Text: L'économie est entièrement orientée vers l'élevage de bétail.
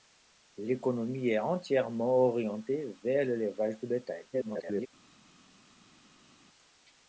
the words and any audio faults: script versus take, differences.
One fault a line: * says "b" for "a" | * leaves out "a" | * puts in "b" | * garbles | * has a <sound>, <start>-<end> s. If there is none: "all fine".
* garbles